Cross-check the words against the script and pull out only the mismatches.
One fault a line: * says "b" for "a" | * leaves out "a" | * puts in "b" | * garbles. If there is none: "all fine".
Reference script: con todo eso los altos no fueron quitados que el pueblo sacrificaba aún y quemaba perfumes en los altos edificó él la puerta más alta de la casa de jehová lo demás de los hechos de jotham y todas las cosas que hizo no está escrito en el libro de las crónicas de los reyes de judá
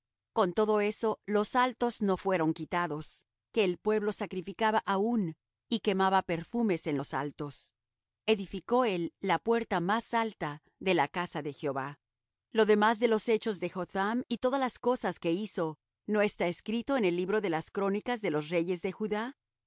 all fine